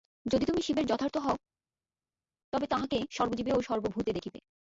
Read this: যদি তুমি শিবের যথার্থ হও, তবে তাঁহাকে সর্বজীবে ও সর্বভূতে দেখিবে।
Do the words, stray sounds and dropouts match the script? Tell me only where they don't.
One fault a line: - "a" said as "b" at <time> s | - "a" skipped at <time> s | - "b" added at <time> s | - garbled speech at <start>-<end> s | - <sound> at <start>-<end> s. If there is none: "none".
none